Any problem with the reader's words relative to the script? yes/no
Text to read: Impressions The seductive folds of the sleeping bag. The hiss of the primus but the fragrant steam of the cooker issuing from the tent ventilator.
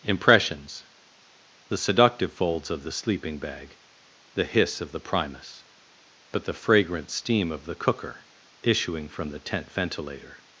no